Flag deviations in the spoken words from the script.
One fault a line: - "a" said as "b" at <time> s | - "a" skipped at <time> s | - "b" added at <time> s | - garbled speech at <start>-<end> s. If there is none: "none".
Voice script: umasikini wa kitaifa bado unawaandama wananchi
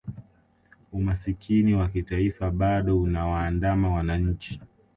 none